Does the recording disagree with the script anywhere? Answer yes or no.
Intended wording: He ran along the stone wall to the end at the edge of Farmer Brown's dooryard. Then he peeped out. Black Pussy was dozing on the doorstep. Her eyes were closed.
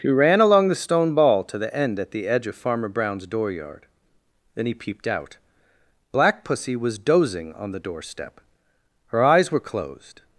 yes